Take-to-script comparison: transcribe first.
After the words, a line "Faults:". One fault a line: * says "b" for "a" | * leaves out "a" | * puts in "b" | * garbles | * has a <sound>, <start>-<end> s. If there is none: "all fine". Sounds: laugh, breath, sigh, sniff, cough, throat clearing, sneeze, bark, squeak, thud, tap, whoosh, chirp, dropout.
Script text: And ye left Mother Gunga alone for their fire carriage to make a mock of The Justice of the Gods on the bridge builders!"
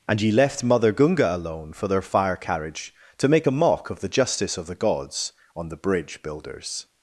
And ye left Mother Gunga alone for their fire carriage to make a mock of The Justice of the Gods on the bridge builders!"
Faults:
all fine